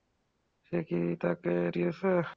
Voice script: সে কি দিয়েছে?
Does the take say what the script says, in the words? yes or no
yes